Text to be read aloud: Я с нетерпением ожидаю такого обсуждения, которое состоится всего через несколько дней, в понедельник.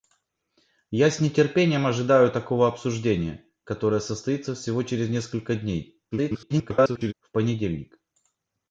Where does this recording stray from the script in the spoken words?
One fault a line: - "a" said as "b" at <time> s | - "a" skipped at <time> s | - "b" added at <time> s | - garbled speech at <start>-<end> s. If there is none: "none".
- garbled speech at 6.1-7.1 s